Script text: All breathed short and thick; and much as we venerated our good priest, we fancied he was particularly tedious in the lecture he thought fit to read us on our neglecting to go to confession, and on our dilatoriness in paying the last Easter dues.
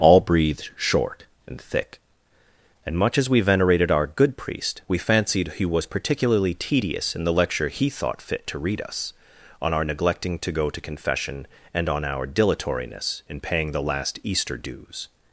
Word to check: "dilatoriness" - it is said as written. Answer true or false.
true